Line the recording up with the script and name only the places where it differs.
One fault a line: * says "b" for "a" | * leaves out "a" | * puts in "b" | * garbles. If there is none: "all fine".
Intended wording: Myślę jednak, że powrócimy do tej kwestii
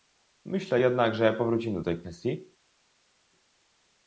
all fine